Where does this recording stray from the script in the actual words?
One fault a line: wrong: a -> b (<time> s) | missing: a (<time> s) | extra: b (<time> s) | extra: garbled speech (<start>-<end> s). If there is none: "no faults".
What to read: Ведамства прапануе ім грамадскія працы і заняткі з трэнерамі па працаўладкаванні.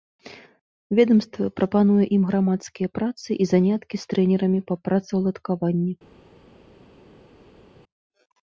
no faults